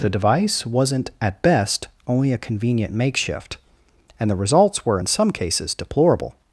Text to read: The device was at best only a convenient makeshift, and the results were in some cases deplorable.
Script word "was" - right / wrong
wrong